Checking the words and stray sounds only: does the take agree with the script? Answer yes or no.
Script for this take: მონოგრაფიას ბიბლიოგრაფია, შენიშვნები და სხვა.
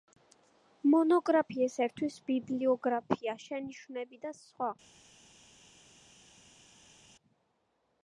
no